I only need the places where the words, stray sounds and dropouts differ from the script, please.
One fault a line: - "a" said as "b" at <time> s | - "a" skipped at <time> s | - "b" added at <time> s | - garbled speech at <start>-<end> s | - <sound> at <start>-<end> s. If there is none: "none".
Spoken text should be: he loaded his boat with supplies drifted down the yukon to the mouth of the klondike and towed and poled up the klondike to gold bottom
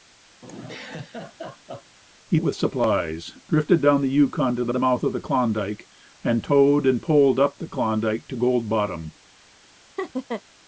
- laugh at 0.4-2.0 s
- "loaded his boat" skipped at 2.4 s
- "the" added at 4.7 s
- laugh at 10.0-10.4 s